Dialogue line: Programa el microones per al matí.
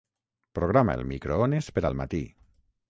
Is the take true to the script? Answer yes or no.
yes